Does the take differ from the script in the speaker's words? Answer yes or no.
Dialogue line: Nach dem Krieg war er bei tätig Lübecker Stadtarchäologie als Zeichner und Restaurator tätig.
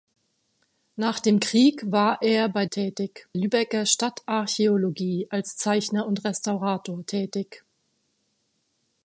no